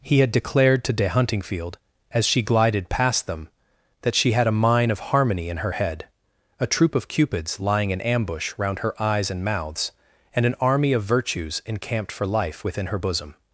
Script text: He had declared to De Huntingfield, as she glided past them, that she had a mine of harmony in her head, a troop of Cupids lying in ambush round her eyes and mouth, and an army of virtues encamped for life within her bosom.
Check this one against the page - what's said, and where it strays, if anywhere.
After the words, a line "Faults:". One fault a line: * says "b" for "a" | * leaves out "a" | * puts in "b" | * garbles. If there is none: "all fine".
He had declared to De Huntingfield, as she glided past them, that she had a mine of harmony in her head, a troop of Cupids lying in ambush round her eyes and mouths, and an army of virtues encamped for life within her bosom.
Faults:
* says "mouths" for "mouth"